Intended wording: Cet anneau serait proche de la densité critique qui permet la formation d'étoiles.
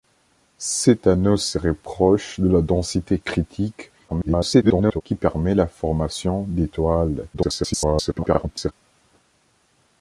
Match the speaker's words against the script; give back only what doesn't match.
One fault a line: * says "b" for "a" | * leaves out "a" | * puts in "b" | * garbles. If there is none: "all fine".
* garbles
* garbles